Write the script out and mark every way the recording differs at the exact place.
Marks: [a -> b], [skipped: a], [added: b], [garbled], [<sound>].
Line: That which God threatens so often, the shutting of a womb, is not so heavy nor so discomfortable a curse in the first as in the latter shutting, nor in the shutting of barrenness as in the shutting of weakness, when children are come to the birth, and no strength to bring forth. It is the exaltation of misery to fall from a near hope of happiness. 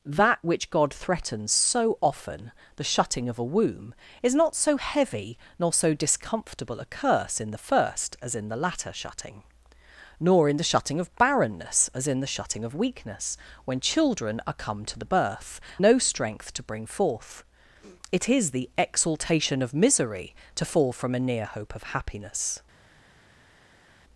That which God threatens so often, the shutting of a womb, is not so heavy nor so discomfortable a curse in the first as in the latter shutting, nor in the shutting of barrenness as in the shutting of weakness, when children are come to the birth, [skipped: and] no strength to bring forth. It is the exaltation of misery to fall from a near hope of happiness.